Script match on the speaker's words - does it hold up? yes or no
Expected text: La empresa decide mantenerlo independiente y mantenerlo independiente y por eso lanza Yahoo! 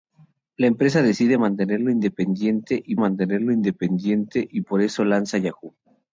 yes